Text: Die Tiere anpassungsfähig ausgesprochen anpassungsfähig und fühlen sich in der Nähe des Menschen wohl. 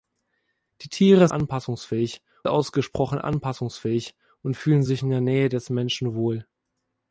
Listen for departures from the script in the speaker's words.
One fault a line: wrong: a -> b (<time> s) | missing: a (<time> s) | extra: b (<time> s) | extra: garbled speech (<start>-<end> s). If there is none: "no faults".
no faults